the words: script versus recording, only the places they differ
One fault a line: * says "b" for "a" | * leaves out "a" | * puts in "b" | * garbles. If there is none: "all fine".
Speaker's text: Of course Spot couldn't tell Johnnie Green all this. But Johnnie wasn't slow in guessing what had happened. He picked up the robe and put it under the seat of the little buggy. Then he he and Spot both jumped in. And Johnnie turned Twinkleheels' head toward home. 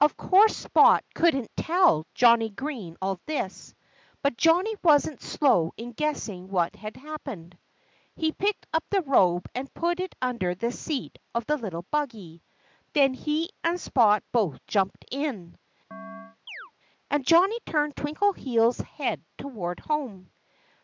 * leaves out "he"